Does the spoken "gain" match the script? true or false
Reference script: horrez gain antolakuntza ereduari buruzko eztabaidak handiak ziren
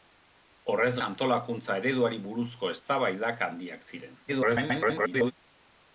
false